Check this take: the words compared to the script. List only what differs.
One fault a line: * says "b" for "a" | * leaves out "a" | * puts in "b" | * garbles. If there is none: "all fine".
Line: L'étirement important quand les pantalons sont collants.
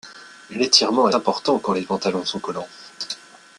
all fine